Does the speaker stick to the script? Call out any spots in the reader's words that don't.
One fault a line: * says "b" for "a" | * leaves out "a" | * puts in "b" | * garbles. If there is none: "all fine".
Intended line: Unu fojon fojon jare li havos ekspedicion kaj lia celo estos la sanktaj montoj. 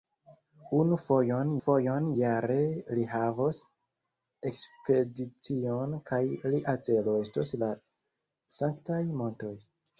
all fine